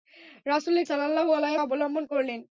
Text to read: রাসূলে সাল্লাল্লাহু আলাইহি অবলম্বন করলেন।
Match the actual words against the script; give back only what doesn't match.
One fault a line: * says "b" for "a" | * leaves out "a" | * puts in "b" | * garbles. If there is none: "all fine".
all fine